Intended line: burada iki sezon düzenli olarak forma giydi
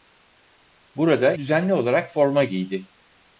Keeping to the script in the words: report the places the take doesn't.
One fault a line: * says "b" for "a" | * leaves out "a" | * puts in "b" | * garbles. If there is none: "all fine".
* leaves out "iki sezon"